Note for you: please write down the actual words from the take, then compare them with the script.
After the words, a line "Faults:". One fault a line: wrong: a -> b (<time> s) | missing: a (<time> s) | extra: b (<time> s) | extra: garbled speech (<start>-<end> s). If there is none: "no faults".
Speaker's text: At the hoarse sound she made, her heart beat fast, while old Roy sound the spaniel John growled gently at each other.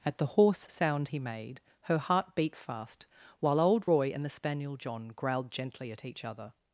At the hoarse sound he made, her heart beat fast, while old Roy and the spaniel John growled gently at each other.
Faults:
wrong: she -> he (1.1 s)
wrong: sound -> and (4.1 s)